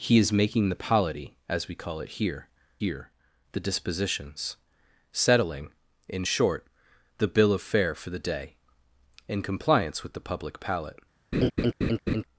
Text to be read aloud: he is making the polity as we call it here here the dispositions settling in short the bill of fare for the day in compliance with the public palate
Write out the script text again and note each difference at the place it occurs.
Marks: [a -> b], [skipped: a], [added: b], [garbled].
he is making the polity as we call it here here the dispositions settling in short the bill of fare for the day in compliance with the public palate